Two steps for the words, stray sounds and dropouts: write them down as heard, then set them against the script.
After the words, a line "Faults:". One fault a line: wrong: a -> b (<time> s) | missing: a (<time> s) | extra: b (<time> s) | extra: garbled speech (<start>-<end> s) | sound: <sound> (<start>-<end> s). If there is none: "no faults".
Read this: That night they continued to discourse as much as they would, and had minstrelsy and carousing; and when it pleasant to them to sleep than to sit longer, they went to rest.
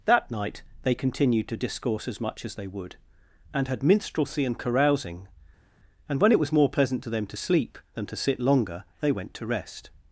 That night they continued to discourse as much as they would, and had minstrelsy and carousing; and when it was more pleasant to them to sleep than to sit longer, they went to rest.
Faults:
extra: was more (6.4 s)